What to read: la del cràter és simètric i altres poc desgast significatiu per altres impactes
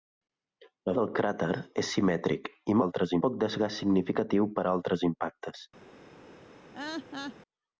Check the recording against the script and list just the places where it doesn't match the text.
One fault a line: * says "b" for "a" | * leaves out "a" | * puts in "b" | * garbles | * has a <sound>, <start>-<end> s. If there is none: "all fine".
* has a laugh, 6.7-7.4 s